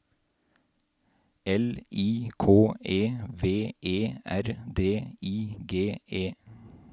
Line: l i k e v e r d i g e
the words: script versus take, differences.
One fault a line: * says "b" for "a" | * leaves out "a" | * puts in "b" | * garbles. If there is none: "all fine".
all fine